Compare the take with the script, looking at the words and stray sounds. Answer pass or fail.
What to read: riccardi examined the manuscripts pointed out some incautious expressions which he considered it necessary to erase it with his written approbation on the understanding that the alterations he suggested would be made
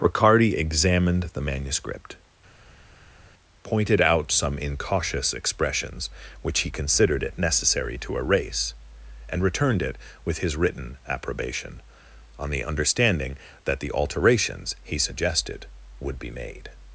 fail